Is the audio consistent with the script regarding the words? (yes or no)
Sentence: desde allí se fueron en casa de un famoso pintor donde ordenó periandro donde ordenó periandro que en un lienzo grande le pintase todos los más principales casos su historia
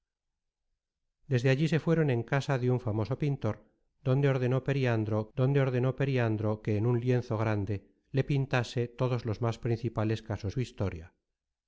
yes